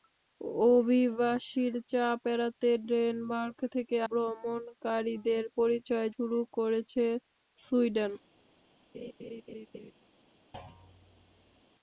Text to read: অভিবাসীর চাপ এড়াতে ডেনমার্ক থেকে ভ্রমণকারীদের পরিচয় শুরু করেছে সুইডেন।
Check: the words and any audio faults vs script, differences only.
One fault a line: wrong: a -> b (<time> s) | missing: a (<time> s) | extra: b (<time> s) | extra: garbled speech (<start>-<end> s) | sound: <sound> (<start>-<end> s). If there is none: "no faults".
sound: laugh (8.9-9.9 s)
sound: thud (10.5-11.6 s)